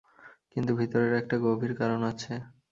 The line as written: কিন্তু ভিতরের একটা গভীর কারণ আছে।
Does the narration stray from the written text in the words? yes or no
no